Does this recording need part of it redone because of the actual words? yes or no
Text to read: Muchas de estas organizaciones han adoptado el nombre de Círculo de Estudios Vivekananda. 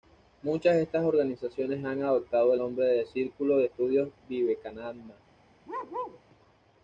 yes